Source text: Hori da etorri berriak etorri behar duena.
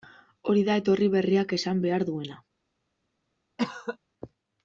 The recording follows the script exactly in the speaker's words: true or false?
false